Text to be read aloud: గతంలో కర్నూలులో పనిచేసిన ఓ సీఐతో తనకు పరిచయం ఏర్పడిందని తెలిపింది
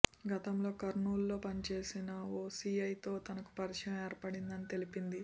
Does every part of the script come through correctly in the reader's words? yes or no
yes